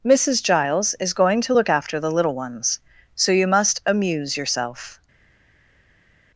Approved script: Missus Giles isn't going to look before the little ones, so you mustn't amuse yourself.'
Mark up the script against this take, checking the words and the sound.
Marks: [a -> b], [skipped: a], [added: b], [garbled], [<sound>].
Missus Giles [isn't -> is] going to look [before -> after] the little ones, so you [mustn't -> must] amuse yourself.'